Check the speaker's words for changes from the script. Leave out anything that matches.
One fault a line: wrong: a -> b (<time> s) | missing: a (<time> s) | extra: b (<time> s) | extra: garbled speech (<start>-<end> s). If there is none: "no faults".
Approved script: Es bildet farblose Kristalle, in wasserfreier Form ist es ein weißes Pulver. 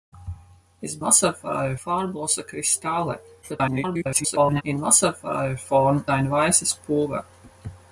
wrong: bildet -> wasserfreier (1.0 s)
extra: garbled speech (3.4-4.6 s)
missing: ist es (6.0 s)